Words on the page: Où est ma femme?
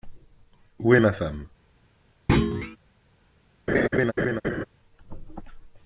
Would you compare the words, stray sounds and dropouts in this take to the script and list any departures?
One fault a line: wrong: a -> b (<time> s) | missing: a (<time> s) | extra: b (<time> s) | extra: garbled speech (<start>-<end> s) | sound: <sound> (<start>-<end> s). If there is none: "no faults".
sound: thud (2.3-2.8 s)
sound: laugh (3.7-4.7 s)